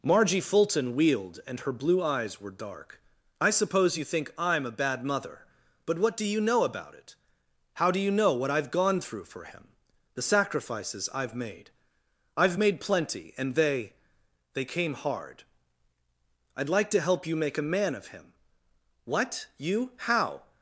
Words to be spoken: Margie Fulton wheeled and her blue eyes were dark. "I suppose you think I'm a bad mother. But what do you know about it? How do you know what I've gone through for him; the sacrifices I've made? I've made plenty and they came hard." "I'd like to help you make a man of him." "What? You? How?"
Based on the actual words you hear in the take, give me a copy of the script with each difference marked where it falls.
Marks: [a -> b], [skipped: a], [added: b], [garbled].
Margie Fulton wheeled and her blue eyes were dark. "I suppose you think I'm a bad mother. But what do you know about it? How do you know what I've gone through for him; the sacrifices I've made? I've made plenty and they [added: they] came hard." "I'd like to help you make a man of him." "What? You? How?"